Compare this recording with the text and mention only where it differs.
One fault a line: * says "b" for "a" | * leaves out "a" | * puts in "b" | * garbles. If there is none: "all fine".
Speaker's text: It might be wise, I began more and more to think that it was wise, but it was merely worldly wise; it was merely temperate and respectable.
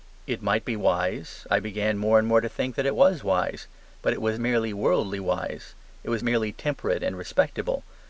all fine